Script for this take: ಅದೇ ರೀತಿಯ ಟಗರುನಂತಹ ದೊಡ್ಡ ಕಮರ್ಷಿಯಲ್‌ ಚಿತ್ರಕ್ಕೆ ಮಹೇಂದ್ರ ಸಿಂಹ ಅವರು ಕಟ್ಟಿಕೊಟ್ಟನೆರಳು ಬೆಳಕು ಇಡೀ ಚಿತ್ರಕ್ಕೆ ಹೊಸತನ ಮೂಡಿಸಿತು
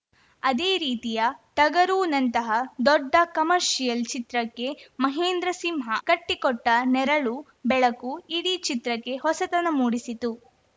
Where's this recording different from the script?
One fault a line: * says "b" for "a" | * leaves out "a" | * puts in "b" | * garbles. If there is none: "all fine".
* leaves out "ಅವರು"